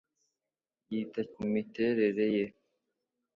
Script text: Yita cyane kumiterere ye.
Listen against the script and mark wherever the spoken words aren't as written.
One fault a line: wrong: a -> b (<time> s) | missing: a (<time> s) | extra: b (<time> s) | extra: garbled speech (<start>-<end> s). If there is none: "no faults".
missing: cyane (1.2 s)